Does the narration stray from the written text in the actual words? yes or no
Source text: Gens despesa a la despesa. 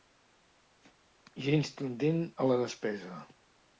yes